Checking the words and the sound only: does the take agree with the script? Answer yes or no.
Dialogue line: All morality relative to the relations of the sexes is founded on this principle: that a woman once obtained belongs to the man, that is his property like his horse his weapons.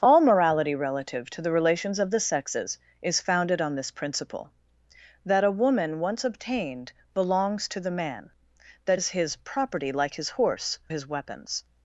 yes